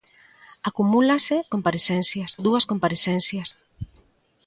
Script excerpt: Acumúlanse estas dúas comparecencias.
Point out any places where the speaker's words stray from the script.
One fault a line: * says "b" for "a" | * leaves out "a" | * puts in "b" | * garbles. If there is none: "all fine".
* says "comparecencias" for "estas"